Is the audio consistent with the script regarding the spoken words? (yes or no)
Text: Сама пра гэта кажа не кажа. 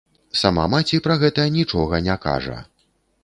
no